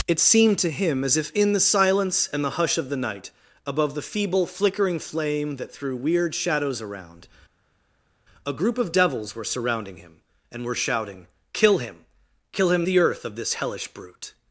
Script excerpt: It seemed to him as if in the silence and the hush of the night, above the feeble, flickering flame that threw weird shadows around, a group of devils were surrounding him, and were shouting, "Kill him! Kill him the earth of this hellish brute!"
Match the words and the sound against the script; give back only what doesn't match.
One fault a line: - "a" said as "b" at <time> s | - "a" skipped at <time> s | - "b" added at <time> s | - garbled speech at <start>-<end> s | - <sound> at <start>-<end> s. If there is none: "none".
none